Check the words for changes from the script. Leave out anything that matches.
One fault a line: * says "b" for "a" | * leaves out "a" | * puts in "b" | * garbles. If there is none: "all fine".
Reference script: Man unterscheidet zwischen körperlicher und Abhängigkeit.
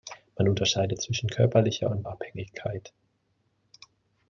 all fine